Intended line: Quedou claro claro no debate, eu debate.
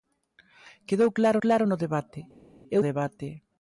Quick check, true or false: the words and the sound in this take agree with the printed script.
true